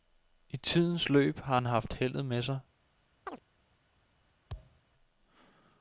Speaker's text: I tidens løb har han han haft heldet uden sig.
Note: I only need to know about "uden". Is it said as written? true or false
false